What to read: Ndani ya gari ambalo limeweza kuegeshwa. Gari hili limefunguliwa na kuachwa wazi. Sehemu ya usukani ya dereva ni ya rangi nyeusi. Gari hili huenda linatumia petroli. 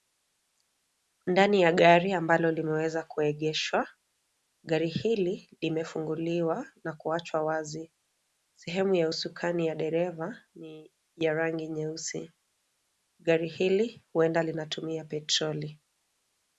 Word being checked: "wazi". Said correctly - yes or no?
yes